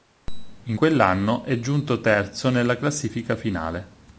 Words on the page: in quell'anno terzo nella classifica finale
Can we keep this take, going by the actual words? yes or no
no